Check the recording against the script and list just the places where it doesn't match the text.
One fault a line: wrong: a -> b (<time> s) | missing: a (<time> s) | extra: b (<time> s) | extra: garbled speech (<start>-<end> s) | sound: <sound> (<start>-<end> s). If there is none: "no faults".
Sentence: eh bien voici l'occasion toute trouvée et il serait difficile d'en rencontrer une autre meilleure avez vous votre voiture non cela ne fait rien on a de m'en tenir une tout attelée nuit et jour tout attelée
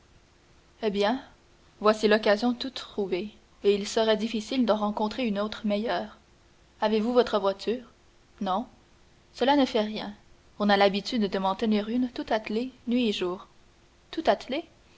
extra: l'habitude (10.8 s)